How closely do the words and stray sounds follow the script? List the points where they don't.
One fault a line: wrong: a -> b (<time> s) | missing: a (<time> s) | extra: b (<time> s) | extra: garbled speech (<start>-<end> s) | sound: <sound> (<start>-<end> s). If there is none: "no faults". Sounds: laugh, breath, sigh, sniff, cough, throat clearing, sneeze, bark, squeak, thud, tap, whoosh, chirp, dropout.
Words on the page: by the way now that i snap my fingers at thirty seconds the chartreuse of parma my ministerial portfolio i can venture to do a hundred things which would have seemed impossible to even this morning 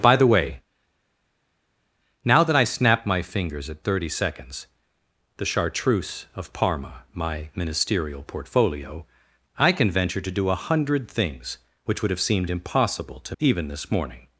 no faults